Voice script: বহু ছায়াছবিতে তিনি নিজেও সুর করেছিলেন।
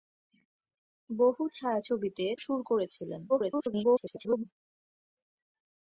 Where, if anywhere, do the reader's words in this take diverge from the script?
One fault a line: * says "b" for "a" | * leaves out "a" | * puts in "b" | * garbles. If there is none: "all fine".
* leaves out "তিনি নিজেও"
* garbles